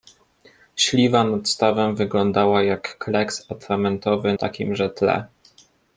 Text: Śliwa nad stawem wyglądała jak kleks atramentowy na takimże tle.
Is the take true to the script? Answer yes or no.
no